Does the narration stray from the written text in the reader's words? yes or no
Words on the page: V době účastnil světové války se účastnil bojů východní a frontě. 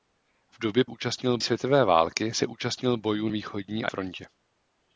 no